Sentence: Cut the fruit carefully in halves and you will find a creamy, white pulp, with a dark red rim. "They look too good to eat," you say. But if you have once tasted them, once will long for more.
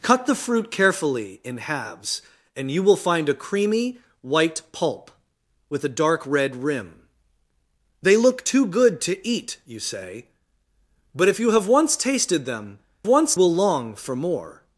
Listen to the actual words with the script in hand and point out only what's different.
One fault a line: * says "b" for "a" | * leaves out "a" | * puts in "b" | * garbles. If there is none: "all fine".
all fine